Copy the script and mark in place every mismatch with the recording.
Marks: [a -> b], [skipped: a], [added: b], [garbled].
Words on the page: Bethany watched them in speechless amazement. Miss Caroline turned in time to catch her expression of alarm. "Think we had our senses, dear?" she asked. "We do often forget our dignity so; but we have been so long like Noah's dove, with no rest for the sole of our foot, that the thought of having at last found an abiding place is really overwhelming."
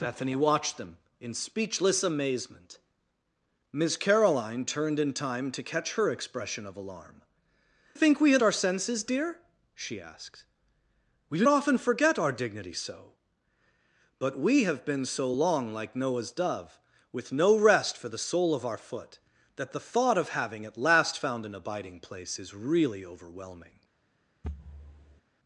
Bethany watched them in speechless amazement. Miss Caroline turned in time to catch her expression of alarm. "Think we had our senses, dear?" she asked. "We do often forget our dignity so; but we have been so long like Noah's dove, with no rest for the sole of our foot, that the thought of having at last found an abiding place is really overwhelming."